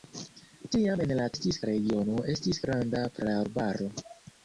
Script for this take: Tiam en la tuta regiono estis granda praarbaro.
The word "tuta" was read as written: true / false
false